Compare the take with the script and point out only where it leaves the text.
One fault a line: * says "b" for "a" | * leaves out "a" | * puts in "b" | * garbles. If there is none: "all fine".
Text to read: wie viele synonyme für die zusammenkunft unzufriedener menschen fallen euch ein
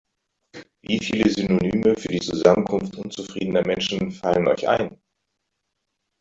all fine